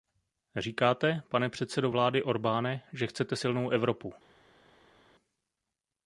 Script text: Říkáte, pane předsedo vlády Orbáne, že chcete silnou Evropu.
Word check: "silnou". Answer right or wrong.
right